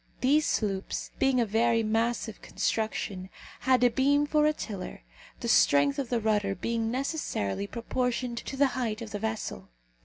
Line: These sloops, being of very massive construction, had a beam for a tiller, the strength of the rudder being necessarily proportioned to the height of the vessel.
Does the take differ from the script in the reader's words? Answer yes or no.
no